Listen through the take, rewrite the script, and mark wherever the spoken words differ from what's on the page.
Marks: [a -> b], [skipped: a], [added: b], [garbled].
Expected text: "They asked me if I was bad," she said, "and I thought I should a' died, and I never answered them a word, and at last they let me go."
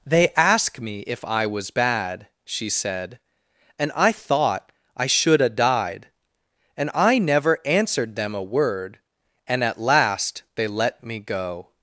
"They [asked -> ask] me if I was bad," she said, "and I thought I should a' died, and I never answered them a word, and at last they let me go."